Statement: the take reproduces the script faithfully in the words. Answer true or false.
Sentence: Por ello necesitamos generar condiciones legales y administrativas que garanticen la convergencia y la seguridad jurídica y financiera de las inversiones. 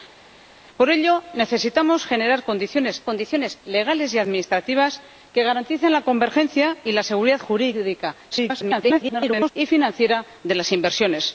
false